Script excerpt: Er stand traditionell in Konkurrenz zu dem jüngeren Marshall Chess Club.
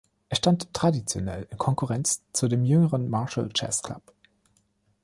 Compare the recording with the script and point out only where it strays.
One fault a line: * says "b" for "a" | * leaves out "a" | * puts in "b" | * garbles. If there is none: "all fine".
all fine